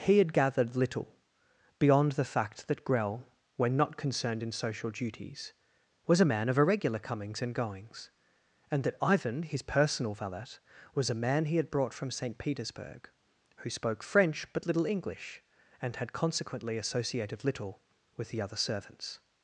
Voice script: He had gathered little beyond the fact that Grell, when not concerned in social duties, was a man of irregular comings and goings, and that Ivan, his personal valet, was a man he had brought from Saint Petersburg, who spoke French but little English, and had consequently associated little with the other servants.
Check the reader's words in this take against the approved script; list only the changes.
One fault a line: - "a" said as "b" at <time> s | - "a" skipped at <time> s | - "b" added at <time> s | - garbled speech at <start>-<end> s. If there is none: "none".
none